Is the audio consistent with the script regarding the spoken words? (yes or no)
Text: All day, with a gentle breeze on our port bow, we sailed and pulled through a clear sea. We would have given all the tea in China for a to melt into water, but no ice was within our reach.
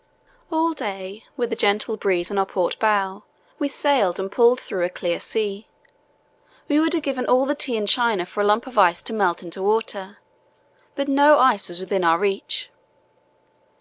no